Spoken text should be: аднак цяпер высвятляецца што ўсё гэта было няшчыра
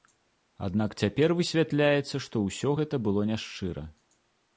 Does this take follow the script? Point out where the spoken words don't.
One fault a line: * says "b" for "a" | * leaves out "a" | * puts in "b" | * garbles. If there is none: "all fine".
all fine